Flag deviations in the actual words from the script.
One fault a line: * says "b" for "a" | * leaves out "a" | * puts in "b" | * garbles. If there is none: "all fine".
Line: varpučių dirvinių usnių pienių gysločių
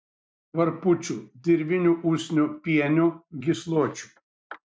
all fine